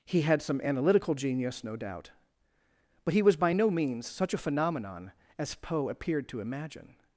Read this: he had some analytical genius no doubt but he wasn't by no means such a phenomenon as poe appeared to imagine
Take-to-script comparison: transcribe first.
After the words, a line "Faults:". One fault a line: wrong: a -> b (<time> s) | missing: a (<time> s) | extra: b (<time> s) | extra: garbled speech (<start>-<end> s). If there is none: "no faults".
he had some analytical genius no doubt but he was by no means such a phenomenon as poe appeared to imagine
Faults:
wrong: wasn't -> was (3.2 s)